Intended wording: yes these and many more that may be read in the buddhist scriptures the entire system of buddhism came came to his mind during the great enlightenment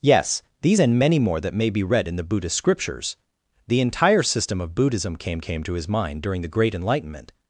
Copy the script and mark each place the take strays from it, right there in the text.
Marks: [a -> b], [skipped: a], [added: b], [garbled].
yes these and many more that may be read in the buddhist scriptures the entire system of buddhism came came to his mind during the great enlightenment